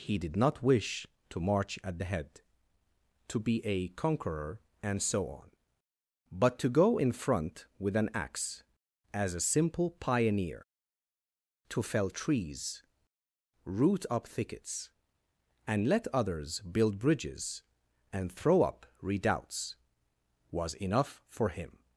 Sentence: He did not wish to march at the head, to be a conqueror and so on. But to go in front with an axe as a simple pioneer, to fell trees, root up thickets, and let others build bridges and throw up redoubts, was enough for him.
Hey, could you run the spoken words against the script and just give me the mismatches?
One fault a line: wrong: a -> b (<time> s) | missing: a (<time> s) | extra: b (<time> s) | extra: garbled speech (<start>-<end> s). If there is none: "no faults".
no faults